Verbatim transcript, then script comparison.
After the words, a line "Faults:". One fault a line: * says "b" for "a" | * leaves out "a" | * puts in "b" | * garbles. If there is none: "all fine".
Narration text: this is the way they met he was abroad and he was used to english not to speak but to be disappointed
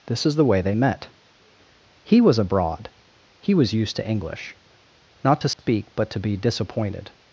this is the way they met he was abroad he was used to english not to speak but to be disappointed
Faults:
* leaves out "and"